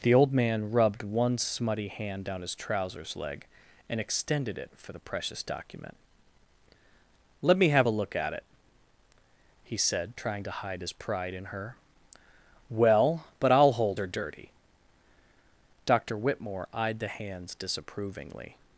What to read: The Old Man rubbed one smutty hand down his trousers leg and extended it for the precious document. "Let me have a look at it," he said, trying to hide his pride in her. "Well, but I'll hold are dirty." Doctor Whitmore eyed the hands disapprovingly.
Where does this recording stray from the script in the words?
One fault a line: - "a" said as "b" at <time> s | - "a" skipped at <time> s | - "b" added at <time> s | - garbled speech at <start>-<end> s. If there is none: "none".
none